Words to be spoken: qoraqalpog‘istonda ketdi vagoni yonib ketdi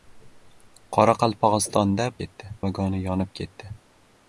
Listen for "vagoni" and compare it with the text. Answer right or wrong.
right